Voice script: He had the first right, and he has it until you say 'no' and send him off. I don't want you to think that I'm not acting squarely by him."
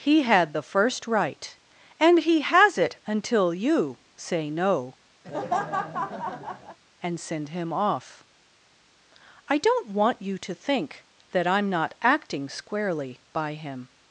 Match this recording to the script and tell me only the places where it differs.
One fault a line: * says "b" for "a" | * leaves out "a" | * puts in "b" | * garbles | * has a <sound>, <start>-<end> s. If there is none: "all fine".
* has a laugh, 5.2-6.8 s